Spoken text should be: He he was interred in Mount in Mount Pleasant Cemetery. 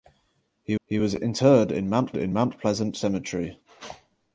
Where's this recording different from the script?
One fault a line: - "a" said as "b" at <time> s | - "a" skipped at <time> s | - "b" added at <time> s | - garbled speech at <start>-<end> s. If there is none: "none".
none